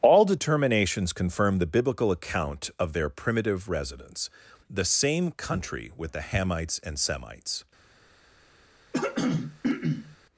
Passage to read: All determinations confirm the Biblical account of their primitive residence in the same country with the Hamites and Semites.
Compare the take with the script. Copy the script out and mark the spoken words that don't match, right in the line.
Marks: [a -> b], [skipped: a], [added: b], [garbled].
All determinations confirm the Biblical account of their primitive residence [skipped: in] the same country with the Hamites and Semites.